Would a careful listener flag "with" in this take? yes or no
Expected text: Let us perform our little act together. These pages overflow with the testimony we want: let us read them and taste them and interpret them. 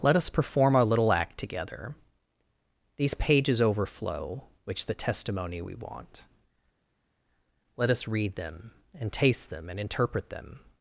yes